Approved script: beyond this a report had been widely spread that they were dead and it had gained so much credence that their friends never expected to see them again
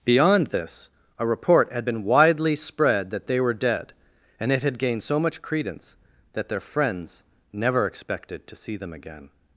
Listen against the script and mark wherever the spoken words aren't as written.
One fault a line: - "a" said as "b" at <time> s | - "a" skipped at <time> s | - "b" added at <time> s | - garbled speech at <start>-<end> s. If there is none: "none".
none